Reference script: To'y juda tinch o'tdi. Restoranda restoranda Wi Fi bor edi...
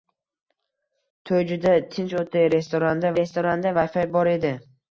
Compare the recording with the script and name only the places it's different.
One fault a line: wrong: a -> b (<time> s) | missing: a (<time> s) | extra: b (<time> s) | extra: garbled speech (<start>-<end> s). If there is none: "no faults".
no faults